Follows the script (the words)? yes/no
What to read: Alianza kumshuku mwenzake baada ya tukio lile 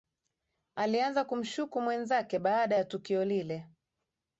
yes